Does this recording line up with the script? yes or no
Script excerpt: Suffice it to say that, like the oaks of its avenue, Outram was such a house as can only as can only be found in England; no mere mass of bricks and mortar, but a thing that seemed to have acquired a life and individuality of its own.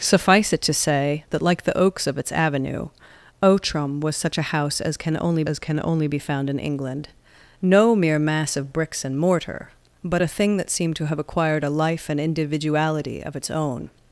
yes